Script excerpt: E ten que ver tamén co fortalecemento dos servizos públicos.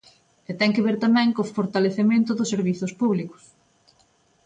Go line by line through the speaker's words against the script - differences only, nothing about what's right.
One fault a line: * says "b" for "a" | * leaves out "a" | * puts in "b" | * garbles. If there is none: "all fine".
all fine